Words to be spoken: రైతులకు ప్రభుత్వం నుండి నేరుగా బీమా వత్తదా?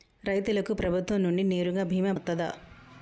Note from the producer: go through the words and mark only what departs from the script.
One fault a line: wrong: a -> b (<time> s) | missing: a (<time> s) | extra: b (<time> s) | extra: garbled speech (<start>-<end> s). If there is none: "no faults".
no faults